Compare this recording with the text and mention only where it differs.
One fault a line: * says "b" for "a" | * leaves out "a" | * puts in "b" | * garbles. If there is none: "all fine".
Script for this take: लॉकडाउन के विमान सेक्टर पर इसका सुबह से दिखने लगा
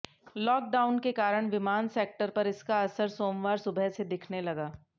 * puts in "कारण"
* puts in "असर सोमवार"